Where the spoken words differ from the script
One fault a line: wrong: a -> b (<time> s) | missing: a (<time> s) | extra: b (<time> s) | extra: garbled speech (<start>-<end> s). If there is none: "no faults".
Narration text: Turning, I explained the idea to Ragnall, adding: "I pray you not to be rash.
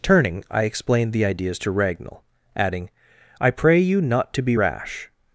wrong: idea -> ideas (1.2 s)